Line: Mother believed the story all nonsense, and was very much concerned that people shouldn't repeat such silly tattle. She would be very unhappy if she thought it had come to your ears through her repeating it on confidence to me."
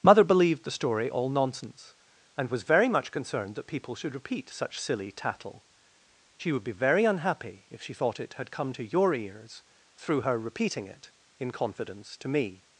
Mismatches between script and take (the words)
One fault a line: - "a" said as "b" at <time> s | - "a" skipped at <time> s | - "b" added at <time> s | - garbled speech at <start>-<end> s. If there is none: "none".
- "shouldn't" said as "should" at 3.9 s
- "on" said as "in" at 11.4 s